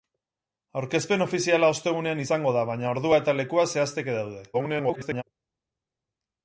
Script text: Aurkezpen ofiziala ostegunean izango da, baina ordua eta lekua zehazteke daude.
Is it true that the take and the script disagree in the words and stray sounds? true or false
true